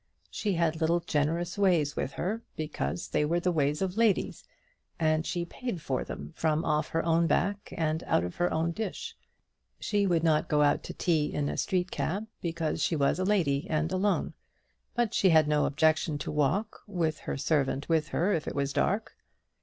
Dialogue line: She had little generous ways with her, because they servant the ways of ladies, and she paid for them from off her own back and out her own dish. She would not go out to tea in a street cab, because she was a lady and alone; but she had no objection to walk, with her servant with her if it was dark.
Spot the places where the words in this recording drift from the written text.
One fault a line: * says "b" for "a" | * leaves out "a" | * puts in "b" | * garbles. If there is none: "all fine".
* says "were" for "servant"
* puts in "of"